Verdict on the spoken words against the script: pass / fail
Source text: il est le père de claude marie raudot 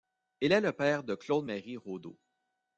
pass